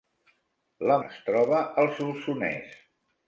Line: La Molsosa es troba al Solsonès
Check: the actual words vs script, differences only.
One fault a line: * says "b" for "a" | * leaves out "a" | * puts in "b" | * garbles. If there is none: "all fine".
* leaves out "Molsosa"